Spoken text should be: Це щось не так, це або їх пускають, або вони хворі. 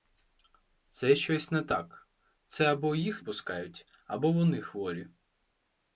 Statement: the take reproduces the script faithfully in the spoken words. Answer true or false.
true